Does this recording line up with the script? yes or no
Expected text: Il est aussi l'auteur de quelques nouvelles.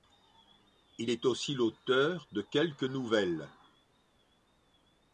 yes